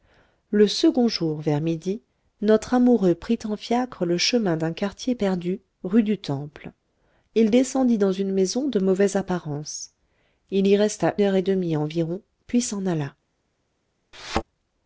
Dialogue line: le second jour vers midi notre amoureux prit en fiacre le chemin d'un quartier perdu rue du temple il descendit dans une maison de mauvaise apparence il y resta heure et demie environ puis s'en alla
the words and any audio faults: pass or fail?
fail